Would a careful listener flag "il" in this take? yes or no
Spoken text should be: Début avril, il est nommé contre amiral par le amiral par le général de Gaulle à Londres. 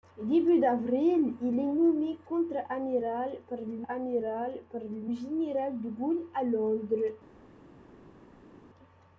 no